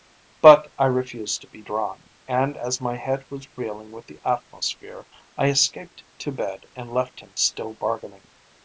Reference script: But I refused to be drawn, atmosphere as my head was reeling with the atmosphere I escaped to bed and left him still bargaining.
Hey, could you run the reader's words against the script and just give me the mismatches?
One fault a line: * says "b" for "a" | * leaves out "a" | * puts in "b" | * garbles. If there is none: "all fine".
* says "and" for "atmosphere"